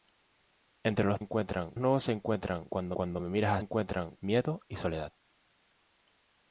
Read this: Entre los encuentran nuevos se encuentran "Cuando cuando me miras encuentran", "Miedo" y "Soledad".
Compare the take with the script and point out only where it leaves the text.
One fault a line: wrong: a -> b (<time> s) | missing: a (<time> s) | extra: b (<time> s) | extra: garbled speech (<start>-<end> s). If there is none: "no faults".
no faults